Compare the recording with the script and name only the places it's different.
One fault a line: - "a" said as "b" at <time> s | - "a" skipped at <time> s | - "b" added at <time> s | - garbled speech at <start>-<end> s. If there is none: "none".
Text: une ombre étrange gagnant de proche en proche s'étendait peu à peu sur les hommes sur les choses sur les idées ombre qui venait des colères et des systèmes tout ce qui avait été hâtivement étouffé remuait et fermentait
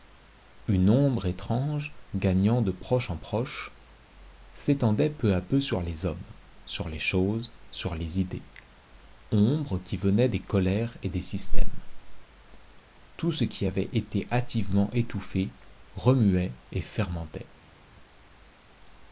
none